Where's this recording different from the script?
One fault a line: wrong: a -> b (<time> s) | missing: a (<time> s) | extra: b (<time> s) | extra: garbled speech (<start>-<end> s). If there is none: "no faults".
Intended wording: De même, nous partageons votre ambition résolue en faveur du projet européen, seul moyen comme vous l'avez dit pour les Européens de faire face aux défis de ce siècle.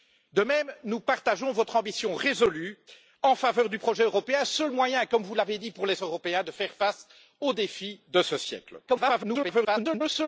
extra: garbled speech (8.9-10.3 s)